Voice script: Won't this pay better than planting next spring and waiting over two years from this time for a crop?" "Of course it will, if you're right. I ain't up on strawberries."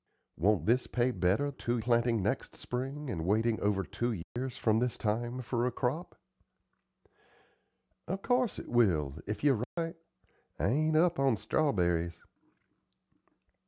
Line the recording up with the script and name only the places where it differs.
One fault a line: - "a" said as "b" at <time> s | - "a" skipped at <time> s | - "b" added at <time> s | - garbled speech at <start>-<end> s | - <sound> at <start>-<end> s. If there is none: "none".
- "than" said as "two" at 1.5 s
- dropout at 4.2-4.4 s
- dropout at 9.6-9.8 s